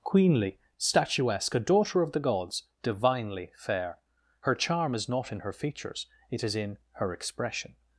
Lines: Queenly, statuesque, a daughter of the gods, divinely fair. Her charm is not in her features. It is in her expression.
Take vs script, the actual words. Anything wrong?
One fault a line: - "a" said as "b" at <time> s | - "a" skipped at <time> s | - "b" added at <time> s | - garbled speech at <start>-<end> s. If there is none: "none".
none